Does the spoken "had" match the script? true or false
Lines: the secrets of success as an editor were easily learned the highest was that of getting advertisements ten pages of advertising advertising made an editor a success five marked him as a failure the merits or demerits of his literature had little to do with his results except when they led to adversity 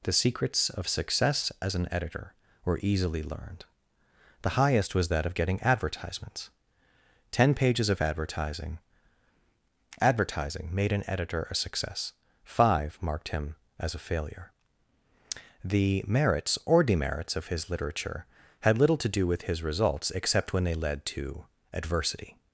true